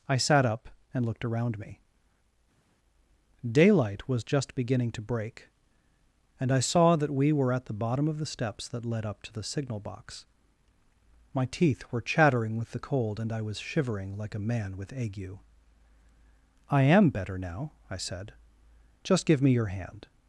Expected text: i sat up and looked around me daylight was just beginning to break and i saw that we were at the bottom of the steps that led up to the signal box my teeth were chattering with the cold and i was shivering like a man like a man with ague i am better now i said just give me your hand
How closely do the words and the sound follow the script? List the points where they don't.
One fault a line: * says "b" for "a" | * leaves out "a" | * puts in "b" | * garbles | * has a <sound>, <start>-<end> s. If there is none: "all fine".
* leaves out "like a man"